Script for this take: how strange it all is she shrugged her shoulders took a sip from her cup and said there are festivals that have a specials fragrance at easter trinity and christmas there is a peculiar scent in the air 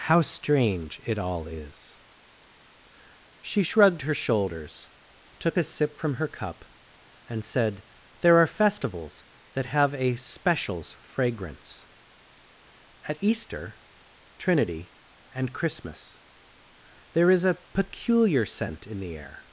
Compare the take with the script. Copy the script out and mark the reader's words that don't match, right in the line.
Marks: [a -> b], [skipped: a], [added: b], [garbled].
how strange it all is she shrugged her shoulders took a sip from her cup and said there are festivals that have a specials fragrance at easter trinity and christmas there is a peculiar scent in the air